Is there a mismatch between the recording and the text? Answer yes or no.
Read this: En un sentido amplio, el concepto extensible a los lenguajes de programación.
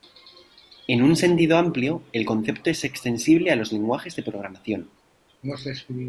yes